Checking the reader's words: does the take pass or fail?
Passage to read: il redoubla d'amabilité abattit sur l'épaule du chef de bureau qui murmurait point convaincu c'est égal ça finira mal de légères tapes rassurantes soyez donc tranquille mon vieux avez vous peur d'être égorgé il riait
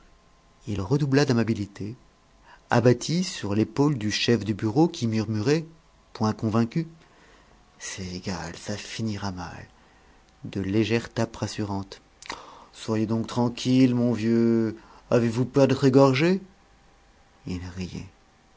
pass